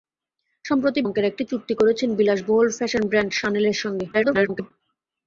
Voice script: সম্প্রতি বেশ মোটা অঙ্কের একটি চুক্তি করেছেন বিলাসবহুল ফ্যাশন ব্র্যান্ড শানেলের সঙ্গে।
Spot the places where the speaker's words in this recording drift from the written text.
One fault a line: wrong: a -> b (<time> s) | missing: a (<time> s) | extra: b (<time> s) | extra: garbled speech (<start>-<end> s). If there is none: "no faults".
missing: বেশ মোটা (1.0 s)
extra: garbled speech (4.1-4.7 s)